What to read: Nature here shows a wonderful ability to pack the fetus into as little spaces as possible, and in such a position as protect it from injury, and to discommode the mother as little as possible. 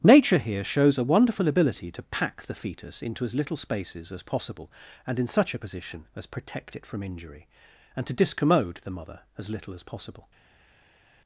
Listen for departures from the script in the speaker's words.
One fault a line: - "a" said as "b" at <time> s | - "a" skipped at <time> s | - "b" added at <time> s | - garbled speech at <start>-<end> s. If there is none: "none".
none